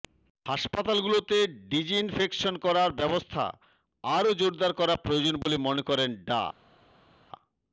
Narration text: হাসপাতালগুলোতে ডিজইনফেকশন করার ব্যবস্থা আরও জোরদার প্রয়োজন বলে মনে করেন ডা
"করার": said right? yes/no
yes